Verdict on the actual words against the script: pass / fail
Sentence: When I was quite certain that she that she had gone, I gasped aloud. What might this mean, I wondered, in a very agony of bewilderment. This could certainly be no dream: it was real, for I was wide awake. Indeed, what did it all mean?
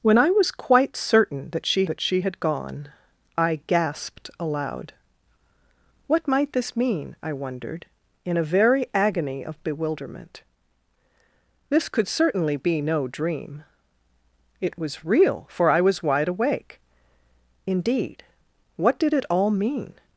pass